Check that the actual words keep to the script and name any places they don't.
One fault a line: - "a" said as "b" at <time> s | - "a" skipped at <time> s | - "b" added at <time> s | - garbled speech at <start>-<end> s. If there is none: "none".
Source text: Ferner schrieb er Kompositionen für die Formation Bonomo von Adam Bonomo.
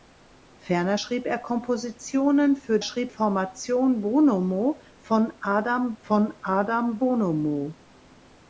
- "die" said as "schrieb" at 2.8 s
- "von Adam" added at 6.0 s